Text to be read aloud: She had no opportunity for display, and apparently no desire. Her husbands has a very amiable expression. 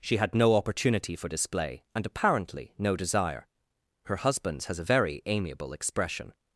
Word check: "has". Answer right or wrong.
right